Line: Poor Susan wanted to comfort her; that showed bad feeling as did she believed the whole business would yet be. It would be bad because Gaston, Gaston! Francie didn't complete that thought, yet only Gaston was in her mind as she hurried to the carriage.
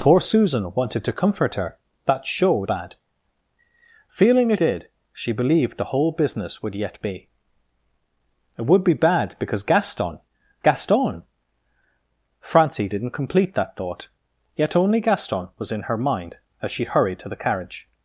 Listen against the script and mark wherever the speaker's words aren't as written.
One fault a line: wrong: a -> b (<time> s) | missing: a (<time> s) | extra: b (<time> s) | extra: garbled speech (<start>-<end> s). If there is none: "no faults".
no faults